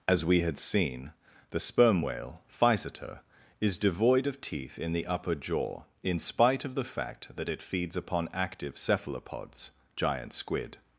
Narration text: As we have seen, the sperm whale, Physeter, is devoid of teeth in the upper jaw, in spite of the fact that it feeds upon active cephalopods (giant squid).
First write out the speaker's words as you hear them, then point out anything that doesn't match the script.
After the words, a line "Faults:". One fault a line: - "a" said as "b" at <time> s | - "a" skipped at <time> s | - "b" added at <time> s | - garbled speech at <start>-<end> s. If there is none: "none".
As we had seen, the sperm whale, Physeter, is devoid of teeth in the upper jaw, in spite of the fact that it feeds upon active cephalopods (giant squid).
Faults:
- "have" said as "had" at 0.4 s